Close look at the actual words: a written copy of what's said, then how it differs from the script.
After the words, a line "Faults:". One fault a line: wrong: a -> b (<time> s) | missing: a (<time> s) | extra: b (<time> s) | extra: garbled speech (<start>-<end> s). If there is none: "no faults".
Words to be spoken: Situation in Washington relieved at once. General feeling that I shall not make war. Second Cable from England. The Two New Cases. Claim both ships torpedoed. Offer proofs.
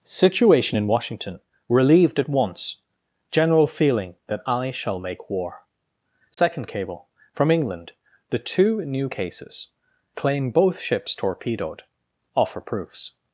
Situation in Washington relieved at once. General feeling that I shall make war. Second Cable from England. The Two New Cases. Claim both ships torpedoed. Offer proofs.
Faults:
missing: not (5.0 s)